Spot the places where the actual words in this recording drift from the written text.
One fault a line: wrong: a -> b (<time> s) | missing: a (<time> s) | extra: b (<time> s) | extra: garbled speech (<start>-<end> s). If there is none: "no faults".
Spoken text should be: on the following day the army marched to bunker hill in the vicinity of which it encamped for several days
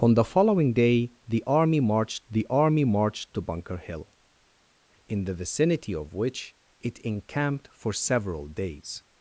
extra: the army marched (2.3 s)